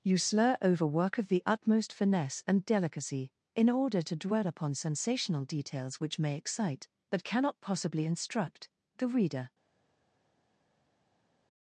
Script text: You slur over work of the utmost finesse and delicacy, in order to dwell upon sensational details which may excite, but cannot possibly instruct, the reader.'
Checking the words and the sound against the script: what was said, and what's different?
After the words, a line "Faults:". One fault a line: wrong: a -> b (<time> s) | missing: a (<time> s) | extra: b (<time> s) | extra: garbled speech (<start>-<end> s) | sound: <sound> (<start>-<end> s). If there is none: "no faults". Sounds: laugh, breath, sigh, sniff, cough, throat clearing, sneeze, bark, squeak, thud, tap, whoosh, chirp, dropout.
You slur over work of the utmost finesse and delicacy, in order to dwell upon sensational details which may excite, but cannot possibly instruct, the reader.'
Faults:
no faults